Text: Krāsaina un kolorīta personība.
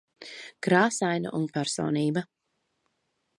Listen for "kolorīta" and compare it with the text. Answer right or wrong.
wrong